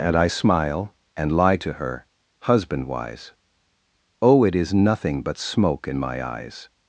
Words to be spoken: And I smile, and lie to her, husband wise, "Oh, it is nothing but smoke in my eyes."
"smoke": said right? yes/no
yes